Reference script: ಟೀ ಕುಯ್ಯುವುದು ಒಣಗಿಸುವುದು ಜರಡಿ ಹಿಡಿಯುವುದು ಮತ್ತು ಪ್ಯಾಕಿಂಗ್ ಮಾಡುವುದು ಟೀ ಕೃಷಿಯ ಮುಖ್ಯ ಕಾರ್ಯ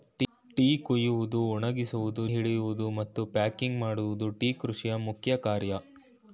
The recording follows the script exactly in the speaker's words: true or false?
false